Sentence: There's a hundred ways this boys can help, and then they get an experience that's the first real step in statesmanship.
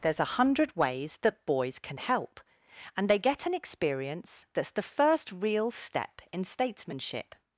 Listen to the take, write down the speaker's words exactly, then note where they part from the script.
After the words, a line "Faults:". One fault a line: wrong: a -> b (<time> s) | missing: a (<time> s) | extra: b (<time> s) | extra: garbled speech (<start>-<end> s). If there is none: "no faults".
There's a hundred ways that boys can help, and they get an experience that's the first real step in statesmanship.
Faults:
wrong: this -> that (1.2 s)
missing: then (3.1 s)